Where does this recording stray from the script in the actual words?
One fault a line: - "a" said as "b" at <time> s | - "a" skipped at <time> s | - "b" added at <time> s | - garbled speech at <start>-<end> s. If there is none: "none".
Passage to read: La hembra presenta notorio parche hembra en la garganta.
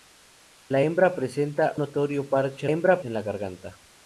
none